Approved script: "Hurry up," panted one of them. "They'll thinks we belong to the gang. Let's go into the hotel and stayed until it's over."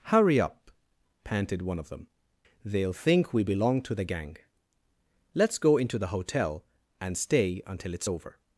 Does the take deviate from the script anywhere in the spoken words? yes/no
yes